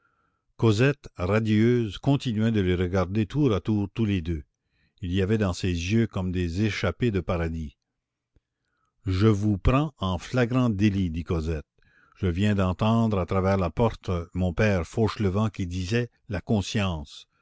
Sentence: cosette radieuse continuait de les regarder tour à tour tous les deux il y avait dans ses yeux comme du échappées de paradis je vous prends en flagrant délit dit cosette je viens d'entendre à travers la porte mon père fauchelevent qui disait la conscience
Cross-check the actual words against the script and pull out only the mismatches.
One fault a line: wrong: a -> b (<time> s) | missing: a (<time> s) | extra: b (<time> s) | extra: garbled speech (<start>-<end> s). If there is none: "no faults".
wrong: du -> des (6.3 s)